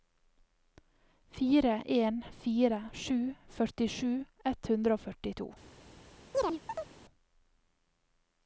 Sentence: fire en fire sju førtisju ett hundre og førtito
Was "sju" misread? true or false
false